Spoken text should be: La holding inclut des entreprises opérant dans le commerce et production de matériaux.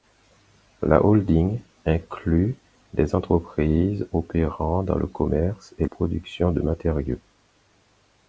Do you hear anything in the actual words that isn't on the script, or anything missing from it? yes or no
no